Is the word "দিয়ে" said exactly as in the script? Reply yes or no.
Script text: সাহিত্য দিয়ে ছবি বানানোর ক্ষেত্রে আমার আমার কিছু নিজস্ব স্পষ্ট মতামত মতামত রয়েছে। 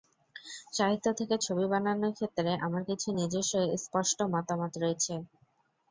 no